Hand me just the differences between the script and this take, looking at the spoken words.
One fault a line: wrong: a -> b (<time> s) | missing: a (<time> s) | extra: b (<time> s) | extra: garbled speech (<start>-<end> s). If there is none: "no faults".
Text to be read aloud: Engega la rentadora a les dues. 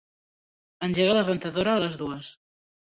no faults